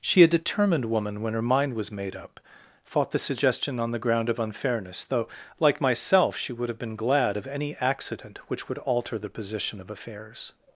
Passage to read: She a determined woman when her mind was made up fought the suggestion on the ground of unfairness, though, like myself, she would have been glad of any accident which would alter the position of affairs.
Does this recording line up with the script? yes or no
yes